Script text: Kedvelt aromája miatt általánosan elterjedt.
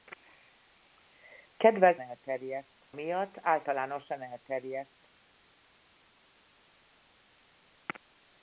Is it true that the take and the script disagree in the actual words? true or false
true